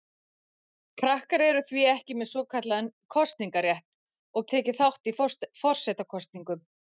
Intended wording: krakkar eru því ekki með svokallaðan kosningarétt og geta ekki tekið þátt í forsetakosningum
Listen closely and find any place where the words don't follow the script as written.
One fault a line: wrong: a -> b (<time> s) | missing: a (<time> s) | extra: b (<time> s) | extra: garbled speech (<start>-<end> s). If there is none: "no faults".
missing: geta ekki (4.5 s)